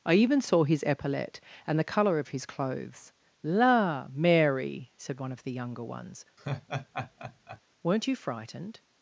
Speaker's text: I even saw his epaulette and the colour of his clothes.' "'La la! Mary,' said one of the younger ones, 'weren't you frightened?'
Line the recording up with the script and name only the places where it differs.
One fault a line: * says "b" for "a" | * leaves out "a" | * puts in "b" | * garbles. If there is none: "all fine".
* leaves out "la"